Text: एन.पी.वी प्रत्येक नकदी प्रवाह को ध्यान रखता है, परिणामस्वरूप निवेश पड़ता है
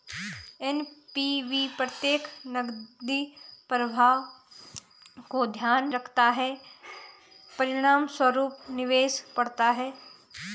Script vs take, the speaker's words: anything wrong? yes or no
no